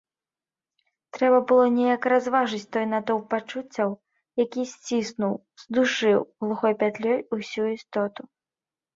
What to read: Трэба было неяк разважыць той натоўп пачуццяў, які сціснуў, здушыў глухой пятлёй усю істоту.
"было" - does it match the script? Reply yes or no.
yes